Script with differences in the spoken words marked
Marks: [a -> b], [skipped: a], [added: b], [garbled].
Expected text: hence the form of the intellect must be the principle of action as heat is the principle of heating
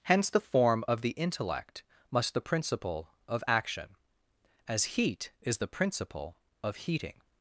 hence the form of the intellect must [skipped: be] the principle of action as heat is the principle of heating